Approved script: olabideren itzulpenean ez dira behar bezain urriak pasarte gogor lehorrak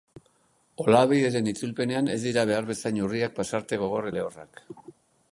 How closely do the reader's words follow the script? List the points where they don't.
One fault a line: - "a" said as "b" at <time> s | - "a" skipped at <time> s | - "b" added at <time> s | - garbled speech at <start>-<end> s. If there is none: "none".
none